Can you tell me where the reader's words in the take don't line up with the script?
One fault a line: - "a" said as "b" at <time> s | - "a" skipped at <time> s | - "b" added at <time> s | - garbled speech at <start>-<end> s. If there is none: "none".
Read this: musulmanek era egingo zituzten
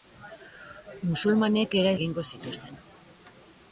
none